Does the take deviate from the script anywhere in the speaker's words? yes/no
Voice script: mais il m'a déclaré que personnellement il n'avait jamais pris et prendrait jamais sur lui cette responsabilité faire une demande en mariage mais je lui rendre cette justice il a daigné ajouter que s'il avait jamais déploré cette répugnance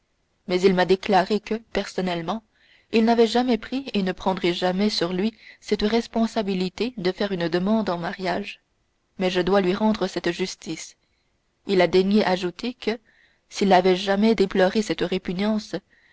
yes